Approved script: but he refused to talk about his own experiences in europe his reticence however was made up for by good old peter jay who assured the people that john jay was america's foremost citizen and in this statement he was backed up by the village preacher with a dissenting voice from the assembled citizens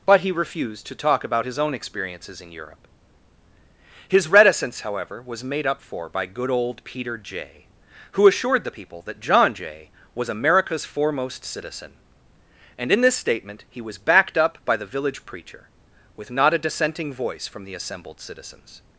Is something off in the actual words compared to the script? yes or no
yes